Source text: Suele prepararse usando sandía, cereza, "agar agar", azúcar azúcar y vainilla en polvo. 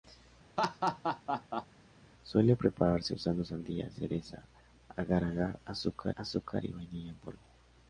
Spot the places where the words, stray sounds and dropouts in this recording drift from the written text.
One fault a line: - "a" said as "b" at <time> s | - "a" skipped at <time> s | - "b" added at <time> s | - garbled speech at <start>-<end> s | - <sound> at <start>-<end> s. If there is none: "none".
- laugh at 0.6-1.7 s